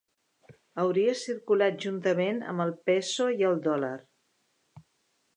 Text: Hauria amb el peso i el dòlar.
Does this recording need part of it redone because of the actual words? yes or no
yes